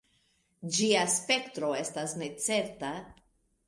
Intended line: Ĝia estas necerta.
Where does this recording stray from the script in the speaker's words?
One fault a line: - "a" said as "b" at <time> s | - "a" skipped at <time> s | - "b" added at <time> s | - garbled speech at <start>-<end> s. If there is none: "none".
- "spektro" added at 1.2 s